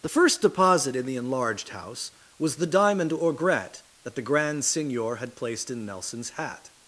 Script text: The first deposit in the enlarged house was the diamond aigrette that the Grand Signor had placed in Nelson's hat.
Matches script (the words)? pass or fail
pass